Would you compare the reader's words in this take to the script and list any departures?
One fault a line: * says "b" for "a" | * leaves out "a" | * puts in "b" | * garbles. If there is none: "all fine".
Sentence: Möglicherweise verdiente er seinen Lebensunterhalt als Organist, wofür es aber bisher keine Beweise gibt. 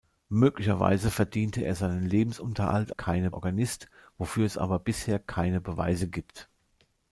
* says "keine" for "als"